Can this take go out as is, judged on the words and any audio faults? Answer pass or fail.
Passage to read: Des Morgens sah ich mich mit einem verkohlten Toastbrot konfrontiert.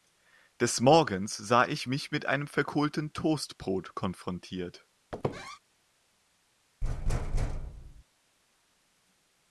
fail